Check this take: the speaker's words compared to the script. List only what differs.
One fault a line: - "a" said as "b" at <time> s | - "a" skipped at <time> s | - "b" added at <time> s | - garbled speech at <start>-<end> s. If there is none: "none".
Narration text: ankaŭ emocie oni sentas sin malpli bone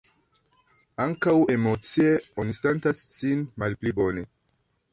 none